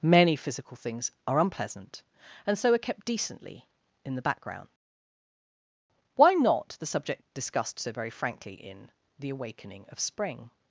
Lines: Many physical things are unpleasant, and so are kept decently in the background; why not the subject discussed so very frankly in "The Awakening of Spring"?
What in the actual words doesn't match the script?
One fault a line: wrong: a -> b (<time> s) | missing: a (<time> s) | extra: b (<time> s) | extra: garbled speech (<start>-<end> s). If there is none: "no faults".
no faults